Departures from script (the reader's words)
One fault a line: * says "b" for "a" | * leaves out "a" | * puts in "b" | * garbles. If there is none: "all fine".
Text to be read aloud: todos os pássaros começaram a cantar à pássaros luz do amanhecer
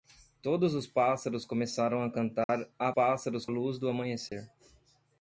all fine